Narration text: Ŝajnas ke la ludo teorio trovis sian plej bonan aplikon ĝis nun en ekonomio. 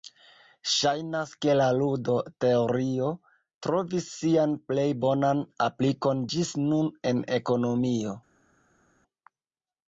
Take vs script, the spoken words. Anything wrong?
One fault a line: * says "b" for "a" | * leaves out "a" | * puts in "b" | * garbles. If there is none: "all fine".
all fine